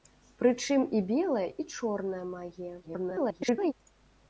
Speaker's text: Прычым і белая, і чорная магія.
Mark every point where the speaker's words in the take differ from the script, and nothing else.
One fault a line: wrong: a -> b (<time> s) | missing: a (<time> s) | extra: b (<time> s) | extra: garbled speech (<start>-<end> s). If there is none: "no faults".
extra: garbled speech (2.8-3.7 s)